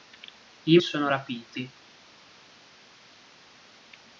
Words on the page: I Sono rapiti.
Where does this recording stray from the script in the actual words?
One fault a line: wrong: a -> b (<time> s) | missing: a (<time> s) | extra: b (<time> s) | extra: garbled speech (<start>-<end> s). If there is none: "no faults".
no faults